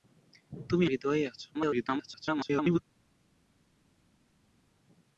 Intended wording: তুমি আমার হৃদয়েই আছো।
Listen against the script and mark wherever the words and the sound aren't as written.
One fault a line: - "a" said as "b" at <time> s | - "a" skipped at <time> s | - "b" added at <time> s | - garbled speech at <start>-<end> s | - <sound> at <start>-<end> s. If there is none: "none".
- "আমার" skipped at 0.8 s
- garbled speech at 1.5-2.8 s